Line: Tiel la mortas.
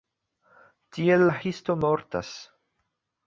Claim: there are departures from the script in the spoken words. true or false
true